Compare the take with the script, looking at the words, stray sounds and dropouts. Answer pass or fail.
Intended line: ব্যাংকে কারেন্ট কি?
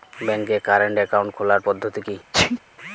fail